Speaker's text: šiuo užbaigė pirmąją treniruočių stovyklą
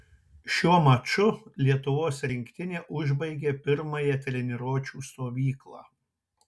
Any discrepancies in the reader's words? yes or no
yes